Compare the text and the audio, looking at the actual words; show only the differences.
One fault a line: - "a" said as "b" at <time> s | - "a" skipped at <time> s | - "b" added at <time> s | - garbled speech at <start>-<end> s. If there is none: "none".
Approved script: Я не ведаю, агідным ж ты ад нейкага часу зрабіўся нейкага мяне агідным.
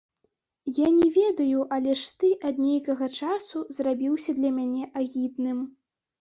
- "агідным" said as "але" at 1.8 s
- "нейкага" said as "для" at 4.4 s